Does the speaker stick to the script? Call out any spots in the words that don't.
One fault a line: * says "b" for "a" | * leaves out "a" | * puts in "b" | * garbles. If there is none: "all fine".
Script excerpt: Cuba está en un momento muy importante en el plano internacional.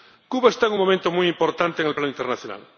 all fine